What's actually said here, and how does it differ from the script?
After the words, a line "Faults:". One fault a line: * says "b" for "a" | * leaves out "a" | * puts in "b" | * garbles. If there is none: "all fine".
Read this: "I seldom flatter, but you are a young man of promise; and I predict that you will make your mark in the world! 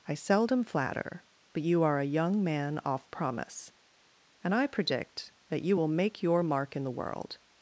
"I seldom flatter, but you are a young man off promise; and I predict that you will make your mark in the world!
Faults:
* says "off" for "of"